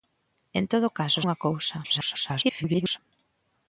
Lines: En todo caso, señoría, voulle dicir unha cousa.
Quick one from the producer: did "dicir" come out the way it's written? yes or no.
no